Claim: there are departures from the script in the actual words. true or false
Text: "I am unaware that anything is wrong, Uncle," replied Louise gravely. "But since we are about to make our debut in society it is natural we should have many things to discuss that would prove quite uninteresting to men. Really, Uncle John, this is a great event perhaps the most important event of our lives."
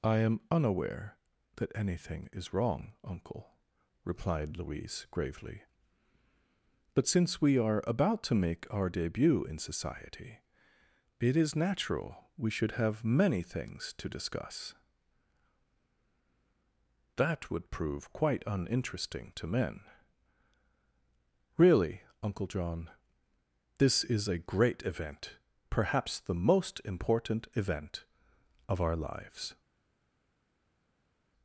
false